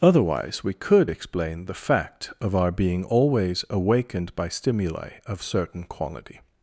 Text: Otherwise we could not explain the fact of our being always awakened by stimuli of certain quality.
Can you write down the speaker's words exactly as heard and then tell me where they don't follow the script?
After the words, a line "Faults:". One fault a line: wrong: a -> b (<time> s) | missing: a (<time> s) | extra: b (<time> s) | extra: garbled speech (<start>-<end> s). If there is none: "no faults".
Otherwise we could explain the fact of our being always awakened by stimuli of certain quality.
Faults:
missing: not (1.1 s)